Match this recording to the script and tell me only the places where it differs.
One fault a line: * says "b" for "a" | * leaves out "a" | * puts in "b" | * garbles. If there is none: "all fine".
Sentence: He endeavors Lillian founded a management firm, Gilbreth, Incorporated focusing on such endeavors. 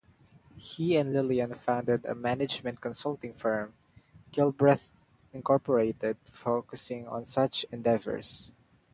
* says "and" for "endeavors"
* puts in "consulting"